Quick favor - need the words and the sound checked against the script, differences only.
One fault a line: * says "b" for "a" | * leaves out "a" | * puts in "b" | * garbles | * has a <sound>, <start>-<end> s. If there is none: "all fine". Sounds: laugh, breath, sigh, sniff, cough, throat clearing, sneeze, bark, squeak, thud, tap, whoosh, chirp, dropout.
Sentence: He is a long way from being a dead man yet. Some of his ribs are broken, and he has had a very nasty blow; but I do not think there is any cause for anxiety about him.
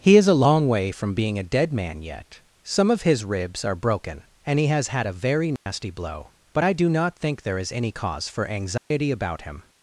* has a dropout, 5.6-5.7 s
* has a dropout, 8.8-8.9 s